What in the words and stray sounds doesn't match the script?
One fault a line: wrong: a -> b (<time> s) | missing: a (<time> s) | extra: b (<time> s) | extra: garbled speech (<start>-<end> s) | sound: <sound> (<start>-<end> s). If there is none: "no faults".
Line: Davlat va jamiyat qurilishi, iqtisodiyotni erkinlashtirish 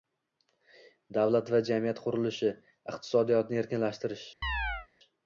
sound: chirp (4.4-4.9 s)